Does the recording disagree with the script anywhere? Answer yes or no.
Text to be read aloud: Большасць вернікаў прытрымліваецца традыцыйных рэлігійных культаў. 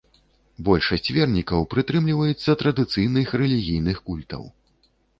no